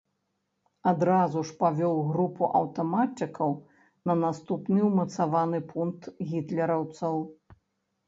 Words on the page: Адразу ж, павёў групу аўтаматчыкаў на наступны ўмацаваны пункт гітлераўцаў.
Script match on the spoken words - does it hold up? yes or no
yes